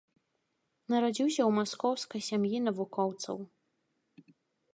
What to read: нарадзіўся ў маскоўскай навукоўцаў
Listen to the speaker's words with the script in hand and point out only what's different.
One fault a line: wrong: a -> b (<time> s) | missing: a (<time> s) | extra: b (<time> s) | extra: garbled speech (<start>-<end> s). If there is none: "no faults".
extra: сям'і (2.3 s)